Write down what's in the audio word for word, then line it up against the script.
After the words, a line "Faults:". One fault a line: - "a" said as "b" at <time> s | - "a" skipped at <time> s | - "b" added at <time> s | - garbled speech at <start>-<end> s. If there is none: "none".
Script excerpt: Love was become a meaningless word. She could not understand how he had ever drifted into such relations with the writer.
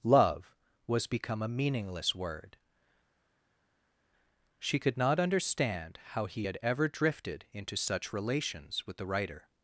Love was become a meaningless word. She could not understand how he had ever drifted into such relations with the writer.
Faults:
none